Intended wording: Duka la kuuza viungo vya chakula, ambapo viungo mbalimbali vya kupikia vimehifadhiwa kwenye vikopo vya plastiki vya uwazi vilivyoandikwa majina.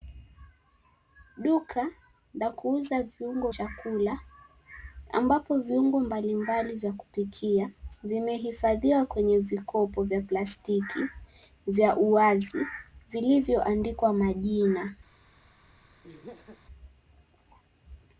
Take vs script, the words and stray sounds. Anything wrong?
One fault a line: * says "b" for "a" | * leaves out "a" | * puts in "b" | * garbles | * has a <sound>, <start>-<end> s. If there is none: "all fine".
* leaves out "vya"
* has a laugh, 16.0-16.7 s